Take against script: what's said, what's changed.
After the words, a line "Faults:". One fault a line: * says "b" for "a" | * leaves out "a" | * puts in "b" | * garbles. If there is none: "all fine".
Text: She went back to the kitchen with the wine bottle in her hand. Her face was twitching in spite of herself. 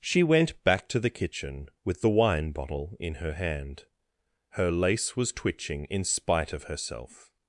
She went back to the kitchen with the wine bottle in her hand. Her lace was twitching in spite of herself.
Faults:
* says "lace" for "face"